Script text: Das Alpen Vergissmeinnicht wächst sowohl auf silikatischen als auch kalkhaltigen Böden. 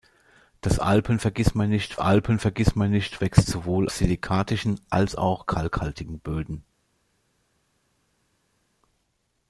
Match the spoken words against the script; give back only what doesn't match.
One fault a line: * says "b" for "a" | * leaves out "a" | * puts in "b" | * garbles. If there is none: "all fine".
* puts in "Alpen Vergissmeinnicht"
* leaves out "auf"